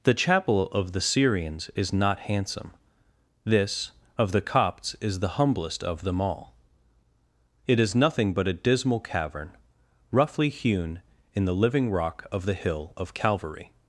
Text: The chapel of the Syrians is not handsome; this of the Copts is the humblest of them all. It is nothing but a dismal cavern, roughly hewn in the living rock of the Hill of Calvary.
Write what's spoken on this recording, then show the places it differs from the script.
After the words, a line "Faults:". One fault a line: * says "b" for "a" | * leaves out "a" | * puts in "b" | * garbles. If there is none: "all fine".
The chapel of the Syrians is not handsome; this of the Copts is the humblest of them all. It is nothing but a dismal cavern, roughly hewn in the living rock of the Hill of Calvary.
Faults:
all fine